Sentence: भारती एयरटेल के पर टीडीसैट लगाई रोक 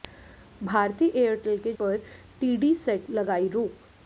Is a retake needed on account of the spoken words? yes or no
no